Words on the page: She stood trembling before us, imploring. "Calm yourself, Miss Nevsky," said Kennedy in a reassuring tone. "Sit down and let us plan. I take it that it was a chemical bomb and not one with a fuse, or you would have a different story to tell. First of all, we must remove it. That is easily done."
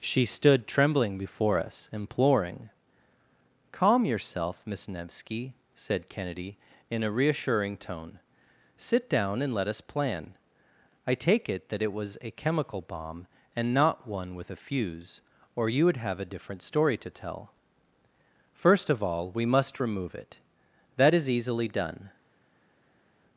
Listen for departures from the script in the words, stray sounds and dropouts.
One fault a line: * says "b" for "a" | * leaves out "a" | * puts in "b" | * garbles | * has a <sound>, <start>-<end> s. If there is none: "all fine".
all fine